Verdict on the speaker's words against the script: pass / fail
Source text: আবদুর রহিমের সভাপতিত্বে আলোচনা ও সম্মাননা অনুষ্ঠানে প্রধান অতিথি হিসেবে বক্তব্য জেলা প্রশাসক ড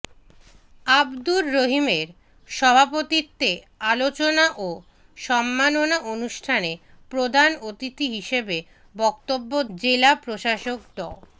pass